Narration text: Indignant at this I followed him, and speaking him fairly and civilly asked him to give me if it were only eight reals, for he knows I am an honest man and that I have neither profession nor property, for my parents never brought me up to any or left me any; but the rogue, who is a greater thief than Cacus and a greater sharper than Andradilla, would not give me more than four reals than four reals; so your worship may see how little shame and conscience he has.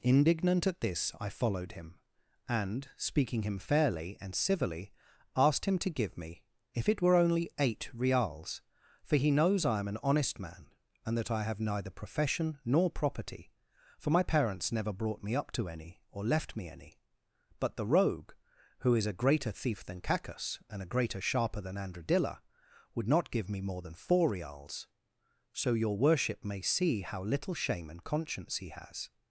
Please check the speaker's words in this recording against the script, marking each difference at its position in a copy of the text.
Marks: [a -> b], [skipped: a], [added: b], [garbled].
Indignant at this I followed him, and speaking him fairly and civilly asked him to give me if it were only eight reals, for he knows I am an honest man and that I have neither profession nor property, for my parents never brought me up to any or left me any; but the rogue, who is a greater thief than Cacus and a greater sharper than Andradilla, would not give me more than four reals [skipped: than four reals;] so your worship may see how little shame and conscience he has.